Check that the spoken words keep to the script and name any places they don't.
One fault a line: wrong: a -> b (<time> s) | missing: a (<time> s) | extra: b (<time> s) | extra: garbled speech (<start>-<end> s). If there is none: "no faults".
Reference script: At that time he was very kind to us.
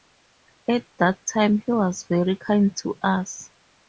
no faults